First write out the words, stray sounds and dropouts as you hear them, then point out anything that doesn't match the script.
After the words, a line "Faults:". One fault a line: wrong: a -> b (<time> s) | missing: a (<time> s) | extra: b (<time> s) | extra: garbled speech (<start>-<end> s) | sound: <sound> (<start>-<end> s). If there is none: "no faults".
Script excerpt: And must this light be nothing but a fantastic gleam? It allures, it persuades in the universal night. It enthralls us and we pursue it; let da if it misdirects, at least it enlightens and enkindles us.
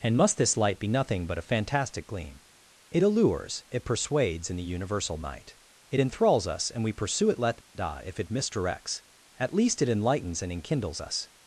And must this light be nothing but a fantastic gleam? It allures, it persuades in the universal night. It enthralls us and we pursue it; let da if it misdirects, at least it enlightens and enkindles us.
Faults:
no faults